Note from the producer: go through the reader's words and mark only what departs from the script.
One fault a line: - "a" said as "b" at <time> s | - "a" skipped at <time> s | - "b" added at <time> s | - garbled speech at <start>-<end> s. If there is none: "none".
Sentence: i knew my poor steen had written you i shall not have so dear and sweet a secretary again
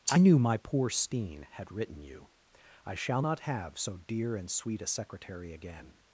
none